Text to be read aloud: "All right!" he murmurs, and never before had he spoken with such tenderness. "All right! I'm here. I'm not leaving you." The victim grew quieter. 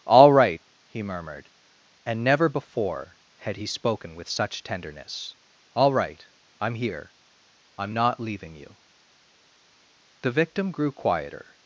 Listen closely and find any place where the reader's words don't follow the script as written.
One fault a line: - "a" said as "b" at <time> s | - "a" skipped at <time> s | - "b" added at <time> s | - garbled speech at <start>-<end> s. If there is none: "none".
- "murmurs" said as "murmured" at 1.0 s